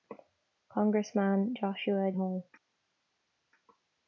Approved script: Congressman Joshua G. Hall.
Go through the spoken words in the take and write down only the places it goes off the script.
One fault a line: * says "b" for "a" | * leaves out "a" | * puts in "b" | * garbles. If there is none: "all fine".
* leaves out "G"